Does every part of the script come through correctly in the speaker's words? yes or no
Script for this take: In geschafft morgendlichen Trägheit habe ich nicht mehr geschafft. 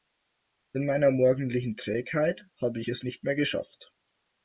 no